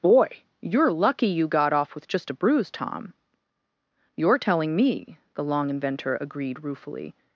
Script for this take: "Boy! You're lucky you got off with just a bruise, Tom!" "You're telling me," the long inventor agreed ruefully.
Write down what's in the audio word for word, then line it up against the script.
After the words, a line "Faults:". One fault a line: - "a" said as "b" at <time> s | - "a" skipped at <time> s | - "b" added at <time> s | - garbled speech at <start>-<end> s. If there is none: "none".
"Boy! You're lucky you got off with just a bruise, Tom!" "You're telling me," the long inventor agreed ruefully.
Faults:
none